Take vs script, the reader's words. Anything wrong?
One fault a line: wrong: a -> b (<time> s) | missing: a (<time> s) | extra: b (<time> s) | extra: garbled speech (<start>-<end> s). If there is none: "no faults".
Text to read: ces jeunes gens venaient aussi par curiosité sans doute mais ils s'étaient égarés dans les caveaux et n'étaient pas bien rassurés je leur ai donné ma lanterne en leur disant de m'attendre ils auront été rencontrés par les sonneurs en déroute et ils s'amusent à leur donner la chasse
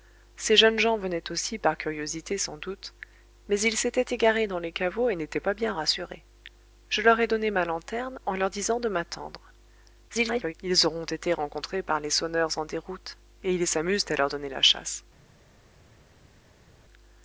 extra: garbled speech (10.1-10.5 s)